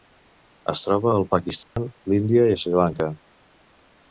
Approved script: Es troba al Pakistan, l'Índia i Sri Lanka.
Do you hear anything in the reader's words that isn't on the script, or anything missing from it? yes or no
no